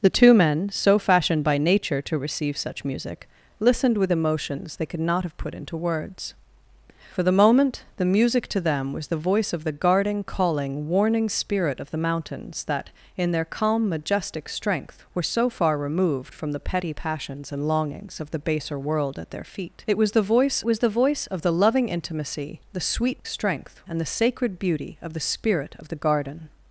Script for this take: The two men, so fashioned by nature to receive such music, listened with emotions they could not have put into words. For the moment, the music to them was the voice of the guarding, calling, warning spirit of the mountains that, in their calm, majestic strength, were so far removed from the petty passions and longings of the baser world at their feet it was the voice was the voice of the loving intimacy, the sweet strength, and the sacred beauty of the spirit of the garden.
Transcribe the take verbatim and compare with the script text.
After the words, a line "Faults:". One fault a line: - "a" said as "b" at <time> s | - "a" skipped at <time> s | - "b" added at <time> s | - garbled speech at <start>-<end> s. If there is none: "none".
The two men, so fashioned by nature to receive such music, listened with emotions they could not have put into words. For the moment, the music to them was the voice of the guarding, calling, warning spirit of the mountains that, in their calm, majestic strength, were so far removed from the petty passions and longings of the baser world at their feet it was the voice was the voice of the loving intimacy, the sweet strength, and the sacred beauty of the spirit of the garden.
Faults:
none